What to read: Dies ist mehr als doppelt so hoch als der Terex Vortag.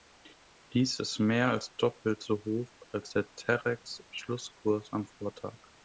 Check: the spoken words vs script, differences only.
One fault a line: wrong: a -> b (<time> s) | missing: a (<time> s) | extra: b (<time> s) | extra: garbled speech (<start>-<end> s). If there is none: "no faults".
extra: Schlusskurs am (4.1 s)